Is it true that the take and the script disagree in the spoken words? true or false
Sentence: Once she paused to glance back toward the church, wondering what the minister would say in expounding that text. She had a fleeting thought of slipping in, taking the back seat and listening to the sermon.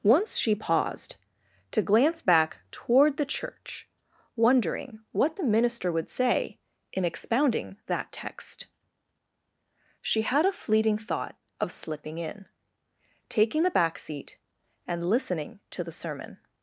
false